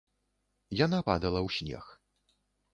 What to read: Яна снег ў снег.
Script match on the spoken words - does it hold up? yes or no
no